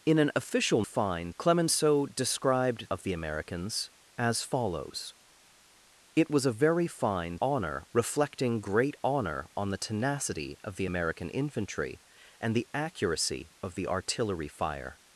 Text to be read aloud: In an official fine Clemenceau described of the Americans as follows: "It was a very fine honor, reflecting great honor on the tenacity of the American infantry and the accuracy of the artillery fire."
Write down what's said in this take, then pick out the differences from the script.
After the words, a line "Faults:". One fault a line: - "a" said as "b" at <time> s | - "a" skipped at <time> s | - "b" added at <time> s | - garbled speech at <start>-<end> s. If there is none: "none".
In an official fine Clemenceau described of the Americans as follows: "It was a very fine honor, reflecting great honor on the tenacity of the American infantry and the accuracy of the artillery fire."
Faults:
none